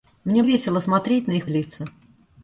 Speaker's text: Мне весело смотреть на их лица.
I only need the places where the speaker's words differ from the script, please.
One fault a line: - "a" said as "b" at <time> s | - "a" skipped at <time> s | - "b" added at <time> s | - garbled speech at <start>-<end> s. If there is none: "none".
none